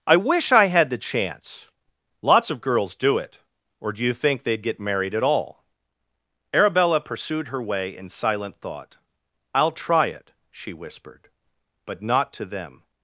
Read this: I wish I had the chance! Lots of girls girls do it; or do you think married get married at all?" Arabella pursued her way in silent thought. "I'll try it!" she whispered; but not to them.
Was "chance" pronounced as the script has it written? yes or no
yes